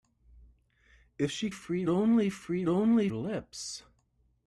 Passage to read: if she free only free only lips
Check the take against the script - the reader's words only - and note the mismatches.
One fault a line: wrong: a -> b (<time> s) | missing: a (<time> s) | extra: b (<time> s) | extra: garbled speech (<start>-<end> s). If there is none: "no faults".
no faults